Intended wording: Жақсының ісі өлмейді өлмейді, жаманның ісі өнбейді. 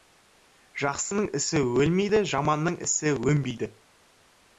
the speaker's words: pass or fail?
fail